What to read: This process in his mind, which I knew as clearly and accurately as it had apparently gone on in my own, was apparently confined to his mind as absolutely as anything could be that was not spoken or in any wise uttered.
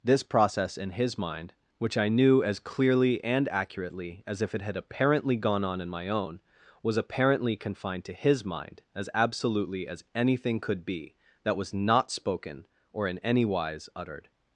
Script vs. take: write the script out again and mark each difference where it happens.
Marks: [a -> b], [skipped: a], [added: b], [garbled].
This process in his mind, which I knew as clearly and accurately as [added: if] it had apparently gone on in my own, was apparently confined to his mind as absolutely as anything could be that was not spoken or in any wise uttered.